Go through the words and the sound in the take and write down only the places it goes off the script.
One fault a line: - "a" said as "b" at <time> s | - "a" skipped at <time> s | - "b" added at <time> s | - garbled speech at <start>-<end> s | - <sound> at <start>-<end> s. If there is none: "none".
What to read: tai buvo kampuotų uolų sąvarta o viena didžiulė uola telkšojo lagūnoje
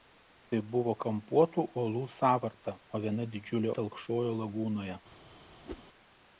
- "uola" skipped at 3.7 s
- whoosh at 5.6-5.8 s